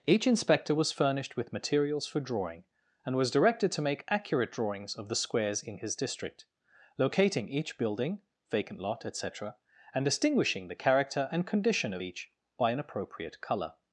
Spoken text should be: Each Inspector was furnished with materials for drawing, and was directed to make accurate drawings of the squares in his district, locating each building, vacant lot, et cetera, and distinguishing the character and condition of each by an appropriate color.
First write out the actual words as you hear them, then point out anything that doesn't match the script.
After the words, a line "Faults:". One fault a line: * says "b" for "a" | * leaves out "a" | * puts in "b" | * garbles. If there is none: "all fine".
Each Inspector was furnished with materials for drawing, and was directed to make accurate drawings of the squares in his district, locating each building, vacant lot, et cetera, and distinguishing the character and condition of each by an appropriate color.
Faults:
all fine